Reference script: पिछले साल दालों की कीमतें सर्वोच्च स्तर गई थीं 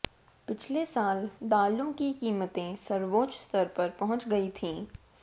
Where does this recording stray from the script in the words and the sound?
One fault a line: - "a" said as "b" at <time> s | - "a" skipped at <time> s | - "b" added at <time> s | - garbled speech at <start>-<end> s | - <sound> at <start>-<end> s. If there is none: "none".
- "पर पहुंच" added at 3.7 s